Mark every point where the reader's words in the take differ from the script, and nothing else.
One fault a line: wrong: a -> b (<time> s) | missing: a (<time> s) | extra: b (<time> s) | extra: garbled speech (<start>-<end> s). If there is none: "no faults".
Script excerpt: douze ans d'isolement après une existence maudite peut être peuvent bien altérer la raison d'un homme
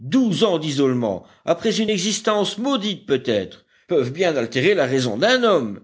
no faults